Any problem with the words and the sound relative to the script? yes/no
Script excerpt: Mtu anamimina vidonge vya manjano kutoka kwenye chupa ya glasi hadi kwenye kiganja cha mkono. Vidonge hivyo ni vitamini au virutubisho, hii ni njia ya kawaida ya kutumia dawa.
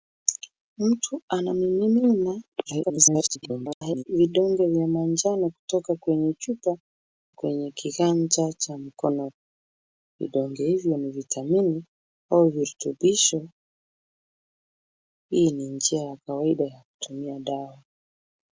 yes